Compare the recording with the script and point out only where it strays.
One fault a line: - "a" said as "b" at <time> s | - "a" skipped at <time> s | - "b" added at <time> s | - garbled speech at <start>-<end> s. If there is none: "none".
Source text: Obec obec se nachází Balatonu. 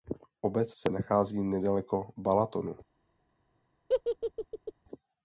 - "obec" skipped at 0.7 s
- "nedaleko" added at 1.4 s